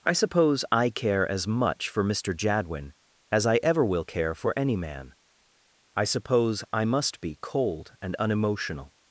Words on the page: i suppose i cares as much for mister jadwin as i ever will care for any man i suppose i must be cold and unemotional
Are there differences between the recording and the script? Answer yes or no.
yes